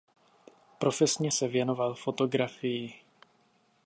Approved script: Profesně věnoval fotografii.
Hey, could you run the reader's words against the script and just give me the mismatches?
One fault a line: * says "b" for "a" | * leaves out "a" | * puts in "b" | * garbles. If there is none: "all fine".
* puts in "se"